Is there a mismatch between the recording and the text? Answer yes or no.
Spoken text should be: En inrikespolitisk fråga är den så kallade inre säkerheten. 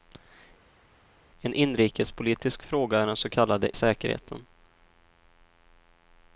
yes